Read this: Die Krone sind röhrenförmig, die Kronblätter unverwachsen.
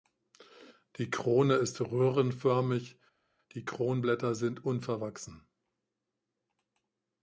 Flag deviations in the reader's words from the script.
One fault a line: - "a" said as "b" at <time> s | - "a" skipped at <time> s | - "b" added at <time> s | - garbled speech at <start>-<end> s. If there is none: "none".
- "sind" said as "ist" at 1.5 s
- "sind" added at 4.3 s